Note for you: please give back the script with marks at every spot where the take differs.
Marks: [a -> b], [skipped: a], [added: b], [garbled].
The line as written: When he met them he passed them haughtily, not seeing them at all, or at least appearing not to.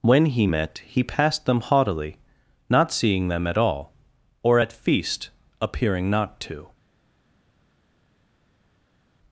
When he met [skipped: them] he passed them haughtily, not seeing them at all, or at [least -> feast] appearing not to.